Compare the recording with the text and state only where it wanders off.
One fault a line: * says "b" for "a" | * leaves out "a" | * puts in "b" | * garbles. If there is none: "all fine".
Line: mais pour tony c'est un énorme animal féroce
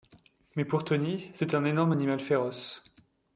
all fine